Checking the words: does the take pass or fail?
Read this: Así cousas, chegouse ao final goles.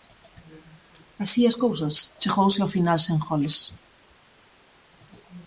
fail